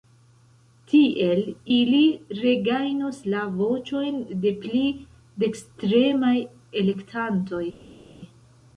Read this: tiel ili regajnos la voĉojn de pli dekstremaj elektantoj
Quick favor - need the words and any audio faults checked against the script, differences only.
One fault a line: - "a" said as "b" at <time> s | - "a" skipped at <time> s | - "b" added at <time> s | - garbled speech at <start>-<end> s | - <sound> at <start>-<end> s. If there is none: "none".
none